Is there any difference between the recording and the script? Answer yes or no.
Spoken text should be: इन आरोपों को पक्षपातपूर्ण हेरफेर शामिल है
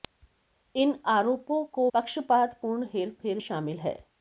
no